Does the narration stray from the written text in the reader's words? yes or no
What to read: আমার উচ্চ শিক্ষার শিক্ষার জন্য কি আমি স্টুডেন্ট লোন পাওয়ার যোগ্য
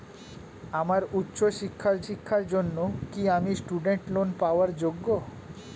no